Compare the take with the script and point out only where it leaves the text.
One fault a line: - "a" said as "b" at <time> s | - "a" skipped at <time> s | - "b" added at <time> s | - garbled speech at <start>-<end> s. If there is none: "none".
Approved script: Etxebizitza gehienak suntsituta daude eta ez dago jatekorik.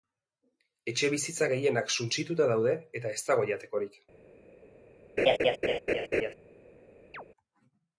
none